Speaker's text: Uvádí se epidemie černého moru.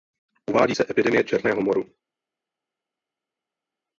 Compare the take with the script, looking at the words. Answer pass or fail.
pass